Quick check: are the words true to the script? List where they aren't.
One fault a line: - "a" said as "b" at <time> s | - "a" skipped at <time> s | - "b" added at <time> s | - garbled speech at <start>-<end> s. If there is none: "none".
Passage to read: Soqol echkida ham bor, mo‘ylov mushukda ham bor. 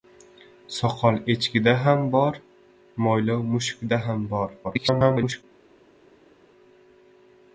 - garbled speech at 4.6-5.4 s